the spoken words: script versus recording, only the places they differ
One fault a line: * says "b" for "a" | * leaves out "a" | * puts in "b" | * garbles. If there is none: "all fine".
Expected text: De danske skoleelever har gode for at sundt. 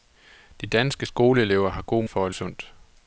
all fine